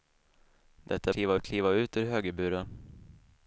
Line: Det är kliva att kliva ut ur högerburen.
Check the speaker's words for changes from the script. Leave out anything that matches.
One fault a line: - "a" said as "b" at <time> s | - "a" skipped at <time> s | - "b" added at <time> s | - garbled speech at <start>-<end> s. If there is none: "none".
none